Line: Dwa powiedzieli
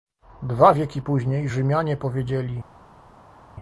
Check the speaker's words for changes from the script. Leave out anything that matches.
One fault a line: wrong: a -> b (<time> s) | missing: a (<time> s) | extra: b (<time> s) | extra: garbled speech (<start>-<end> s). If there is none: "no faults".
extra: wieki później Rzymianie (0.7 s)